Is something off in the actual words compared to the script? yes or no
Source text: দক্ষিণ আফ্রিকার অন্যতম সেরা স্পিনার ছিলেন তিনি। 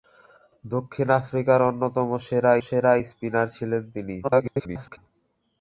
yes